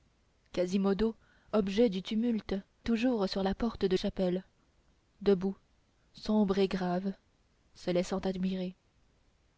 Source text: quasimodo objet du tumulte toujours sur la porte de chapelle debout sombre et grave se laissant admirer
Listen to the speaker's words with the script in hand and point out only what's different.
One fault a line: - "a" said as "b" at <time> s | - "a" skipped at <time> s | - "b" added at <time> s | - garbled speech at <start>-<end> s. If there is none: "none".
none